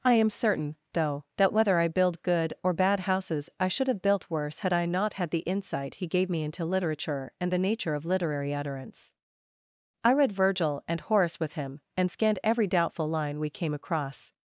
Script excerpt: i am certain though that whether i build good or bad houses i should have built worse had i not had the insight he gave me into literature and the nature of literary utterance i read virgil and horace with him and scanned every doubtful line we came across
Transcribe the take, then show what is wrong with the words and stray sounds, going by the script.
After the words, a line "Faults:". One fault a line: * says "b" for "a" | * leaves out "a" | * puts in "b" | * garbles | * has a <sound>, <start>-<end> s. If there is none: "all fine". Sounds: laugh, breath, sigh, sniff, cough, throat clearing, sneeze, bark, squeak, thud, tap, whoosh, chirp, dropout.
i am certain though that whether i build good or bad houses i should have built worse had i not had the insight he gave me into literature and the nature of literary utterance i read virgil and horace with him and scanned every doubtful line we came across
Faults:
all fine